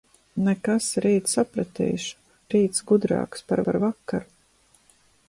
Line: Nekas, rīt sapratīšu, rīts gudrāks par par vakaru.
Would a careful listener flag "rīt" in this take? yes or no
no